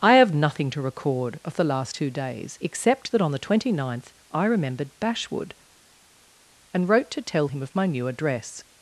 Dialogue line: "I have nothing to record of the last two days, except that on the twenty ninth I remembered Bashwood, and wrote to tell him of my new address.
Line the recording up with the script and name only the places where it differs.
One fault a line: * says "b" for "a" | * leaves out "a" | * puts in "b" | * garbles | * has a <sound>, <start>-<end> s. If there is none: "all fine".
all fine